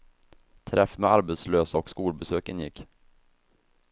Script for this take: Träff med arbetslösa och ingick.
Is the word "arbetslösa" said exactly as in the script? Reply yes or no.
yes